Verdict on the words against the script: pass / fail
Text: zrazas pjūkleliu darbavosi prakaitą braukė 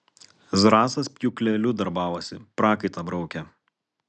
pass